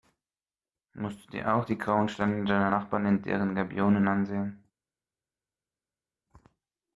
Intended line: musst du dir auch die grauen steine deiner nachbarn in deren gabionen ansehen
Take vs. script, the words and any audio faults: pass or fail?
pass